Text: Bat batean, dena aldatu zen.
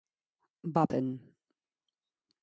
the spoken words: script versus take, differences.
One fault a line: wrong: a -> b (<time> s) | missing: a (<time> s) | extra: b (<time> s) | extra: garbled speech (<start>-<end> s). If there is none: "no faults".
missing: batean dena aldatu (0.9 s)